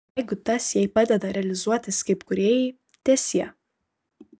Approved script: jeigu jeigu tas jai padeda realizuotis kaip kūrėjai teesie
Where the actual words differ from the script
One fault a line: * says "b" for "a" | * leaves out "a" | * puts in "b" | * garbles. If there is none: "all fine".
* leaves out "jeigu"